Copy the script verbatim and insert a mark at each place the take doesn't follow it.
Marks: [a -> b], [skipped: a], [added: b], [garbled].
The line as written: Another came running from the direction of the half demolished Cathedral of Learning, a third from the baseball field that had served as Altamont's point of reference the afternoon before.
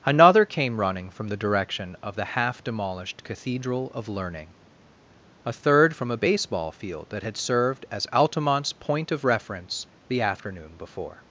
Another came running from the direction of the half demolished Cathedral of Learning, a third from [the -> a] baseball field that had served as Altamont's point of reference the afternoon before.